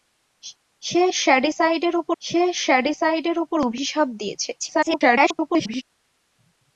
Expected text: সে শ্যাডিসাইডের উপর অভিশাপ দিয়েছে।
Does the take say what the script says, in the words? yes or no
no